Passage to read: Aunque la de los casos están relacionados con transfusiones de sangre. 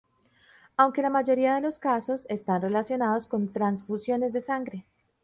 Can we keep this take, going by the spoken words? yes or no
no